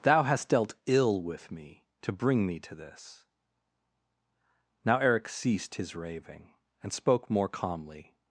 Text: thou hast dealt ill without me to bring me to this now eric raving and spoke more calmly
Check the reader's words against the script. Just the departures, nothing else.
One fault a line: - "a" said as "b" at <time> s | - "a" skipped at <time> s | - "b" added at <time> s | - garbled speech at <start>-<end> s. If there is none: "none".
- "without" said as "with" at 1.2 s
- "ceased his" added at 5.3 s